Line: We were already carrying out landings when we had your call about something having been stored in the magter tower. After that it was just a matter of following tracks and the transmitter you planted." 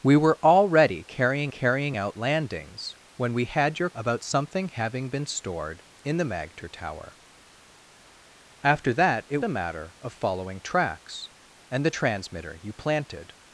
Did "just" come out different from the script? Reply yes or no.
yes